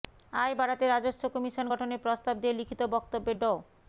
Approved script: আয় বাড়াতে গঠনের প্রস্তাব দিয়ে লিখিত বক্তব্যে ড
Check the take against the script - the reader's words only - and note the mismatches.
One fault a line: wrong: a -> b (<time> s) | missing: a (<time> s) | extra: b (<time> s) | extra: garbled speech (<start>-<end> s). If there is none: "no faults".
extra: রাজস্ব কমিশন (0.9 s)